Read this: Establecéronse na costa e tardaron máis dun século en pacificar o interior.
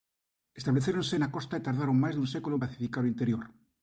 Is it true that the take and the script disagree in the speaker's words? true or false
false